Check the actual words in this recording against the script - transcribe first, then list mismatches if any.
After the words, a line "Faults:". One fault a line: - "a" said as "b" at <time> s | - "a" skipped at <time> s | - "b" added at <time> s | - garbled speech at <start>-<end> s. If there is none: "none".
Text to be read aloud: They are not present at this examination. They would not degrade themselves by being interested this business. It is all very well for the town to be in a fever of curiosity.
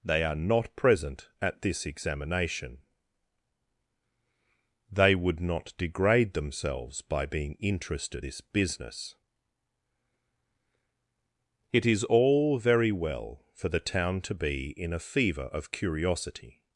They are not present at this examination. They would not degrade themselves by being interested this business. It is all very well for the town to be in a fever of curiosity.
Faults:
none